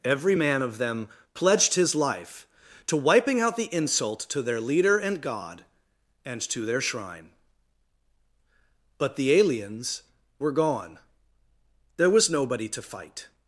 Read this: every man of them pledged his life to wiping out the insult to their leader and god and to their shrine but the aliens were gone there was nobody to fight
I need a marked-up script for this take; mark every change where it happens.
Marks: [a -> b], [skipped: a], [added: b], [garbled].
every man of them pledged his life to wiping out the insult to their leader and god and to their shrine but the aliens were gone there was nobody to fight